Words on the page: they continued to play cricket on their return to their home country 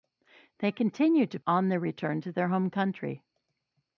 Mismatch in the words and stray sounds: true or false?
true